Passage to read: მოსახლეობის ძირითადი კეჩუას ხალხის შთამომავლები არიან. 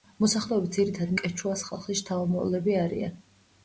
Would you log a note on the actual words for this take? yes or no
no